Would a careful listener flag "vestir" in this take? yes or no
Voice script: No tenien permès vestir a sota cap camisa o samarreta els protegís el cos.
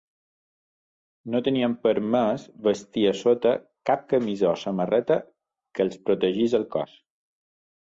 no